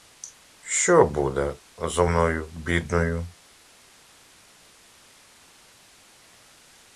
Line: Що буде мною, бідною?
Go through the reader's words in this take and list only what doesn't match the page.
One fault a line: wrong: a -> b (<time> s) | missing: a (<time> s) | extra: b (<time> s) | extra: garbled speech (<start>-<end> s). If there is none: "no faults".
extra: зо (1.8 s)